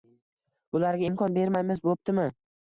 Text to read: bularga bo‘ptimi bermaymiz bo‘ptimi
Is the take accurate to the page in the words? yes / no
no